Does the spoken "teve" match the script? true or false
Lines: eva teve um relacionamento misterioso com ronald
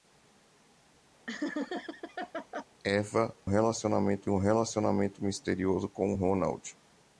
false